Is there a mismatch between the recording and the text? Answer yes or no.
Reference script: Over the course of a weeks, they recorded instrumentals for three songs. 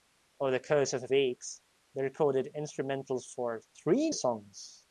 no